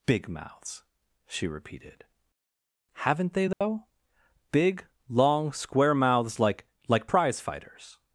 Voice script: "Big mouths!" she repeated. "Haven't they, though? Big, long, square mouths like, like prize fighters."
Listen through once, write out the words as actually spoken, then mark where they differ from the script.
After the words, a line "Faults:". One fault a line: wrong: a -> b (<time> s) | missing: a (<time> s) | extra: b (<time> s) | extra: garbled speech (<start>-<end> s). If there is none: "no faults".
"Big mouths!" she repeated. "Haven't they, though? Big, long, square mouths like, like prize fighters."
Faults:
no faults